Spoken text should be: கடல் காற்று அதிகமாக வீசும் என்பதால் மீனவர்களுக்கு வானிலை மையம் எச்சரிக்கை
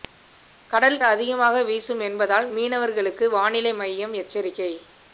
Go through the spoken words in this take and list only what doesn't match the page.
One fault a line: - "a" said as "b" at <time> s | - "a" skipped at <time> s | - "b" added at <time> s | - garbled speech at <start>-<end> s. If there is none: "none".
- "காற்று" skipped at 1.0 s